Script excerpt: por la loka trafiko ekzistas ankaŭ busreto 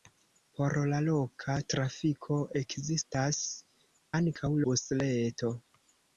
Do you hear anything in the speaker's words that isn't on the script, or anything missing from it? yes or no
no